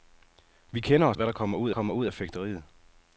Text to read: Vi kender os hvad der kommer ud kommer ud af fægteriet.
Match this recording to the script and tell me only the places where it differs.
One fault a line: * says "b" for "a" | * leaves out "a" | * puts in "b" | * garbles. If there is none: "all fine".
all fine